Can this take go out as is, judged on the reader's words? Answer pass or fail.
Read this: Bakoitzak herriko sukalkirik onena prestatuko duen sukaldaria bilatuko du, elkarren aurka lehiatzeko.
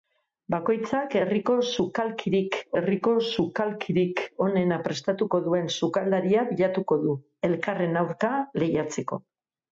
fail